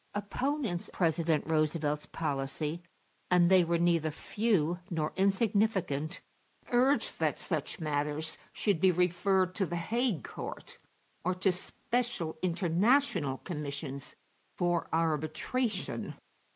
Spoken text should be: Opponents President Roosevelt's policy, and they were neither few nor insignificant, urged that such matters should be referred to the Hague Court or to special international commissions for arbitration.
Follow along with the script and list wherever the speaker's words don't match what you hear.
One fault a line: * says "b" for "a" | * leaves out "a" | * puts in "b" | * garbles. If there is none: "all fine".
all fine